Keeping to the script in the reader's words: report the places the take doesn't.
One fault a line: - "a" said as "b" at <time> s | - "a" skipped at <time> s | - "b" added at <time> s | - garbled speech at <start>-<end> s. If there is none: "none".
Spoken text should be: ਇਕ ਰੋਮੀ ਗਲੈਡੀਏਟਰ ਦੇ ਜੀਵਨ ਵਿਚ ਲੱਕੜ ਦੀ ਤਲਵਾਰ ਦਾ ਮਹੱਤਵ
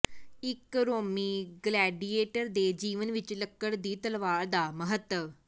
none